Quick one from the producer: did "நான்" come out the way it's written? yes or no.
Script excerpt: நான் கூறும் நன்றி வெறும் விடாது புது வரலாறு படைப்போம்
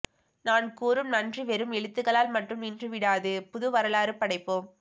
yes